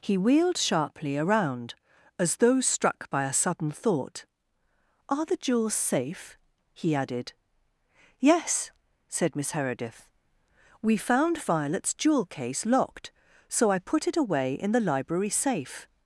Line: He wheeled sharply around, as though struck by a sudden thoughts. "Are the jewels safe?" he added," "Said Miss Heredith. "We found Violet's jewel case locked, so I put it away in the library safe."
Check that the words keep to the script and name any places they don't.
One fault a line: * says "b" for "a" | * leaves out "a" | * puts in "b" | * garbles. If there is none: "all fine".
* says "thought" for "thoughts"
* puts in "Yes"